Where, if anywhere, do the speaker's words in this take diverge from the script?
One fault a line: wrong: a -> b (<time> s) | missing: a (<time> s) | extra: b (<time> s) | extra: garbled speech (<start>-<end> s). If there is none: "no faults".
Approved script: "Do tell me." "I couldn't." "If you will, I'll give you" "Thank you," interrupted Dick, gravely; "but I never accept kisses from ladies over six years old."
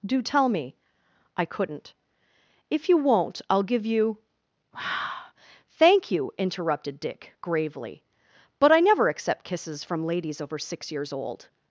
wrong: will -> won't (3.0 s)